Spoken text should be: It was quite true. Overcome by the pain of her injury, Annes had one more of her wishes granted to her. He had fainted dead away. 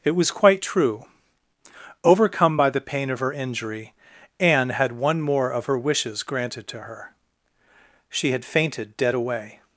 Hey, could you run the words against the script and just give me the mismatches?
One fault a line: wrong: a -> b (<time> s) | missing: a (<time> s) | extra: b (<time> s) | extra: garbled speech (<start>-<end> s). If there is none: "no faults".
wrong: Annes -> Anne (4.4 s)
wrong: He -> She (8.1 s)